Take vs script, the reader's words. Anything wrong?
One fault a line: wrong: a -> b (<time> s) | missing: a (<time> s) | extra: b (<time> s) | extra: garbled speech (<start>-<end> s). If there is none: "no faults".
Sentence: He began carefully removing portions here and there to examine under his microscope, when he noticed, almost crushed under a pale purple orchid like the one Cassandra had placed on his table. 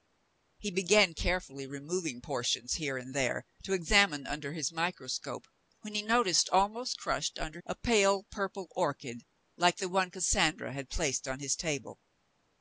no faults